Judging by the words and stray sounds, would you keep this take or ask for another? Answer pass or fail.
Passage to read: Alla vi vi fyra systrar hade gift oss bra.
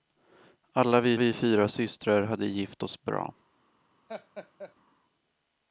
fail